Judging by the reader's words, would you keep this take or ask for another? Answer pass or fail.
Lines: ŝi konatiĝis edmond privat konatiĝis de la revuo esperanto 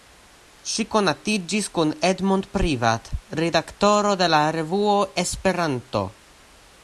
fail